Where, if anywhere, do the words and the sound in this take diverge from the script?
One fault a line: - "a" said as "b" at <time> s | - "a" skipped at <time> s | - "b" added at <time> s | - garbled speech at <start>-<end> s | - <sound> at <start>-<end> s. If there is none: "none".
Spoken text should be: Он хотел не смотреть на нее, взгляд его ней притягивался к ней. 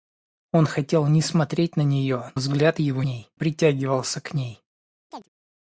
- chirp at 5.1-5.3 s